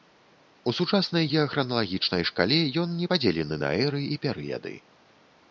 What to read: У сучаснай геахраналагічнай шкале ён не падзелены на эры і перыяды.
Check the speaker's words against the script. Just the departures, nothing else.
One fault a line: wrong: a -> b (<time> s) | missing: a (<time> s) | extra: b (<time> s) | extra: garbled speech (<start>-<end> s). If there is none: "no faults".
no faults